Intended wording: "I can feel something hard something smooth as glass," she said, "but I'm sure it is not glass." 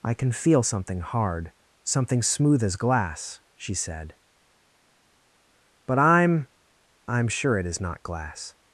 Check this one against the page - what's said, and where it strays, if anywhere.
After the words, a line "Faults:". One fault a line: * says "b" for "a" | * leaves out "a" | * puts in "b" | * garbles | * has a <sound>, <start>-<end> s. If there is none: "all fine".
"I can feel something hard something smooth as glass," she said, "but I'm I'm sure it is not glass."
Faults:
* puts in "I'm"